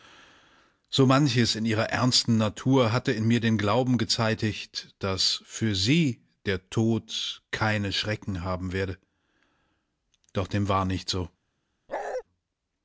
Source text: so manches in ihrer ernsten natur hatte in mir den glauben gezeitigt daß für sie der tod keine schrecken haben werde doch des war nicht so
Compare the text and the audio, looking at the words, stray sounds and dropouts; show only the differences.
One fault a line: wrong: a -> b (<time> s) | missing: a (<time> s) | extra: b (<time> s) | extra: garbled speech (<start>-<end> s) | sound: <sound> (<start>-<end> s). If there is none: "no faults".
wrong: des -> dem (10.5 s)
sound: bark (11.9-12.2 s)